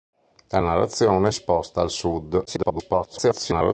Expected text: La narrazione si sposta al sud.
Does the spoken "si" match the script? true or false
false